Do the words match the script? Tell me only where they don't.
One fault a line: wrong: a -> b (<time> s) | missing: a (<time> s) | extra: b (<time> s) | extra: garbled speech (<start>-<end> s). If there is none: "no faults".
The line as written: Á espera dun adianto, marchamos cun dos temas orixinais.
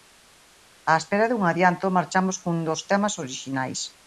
no faults